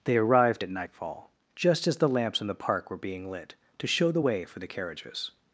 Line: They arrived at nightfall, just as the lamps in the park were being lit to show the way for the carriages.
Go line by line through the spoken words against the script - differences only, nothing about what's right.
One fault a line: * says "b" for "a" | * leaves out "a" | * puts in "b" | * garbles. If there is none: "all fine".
all fine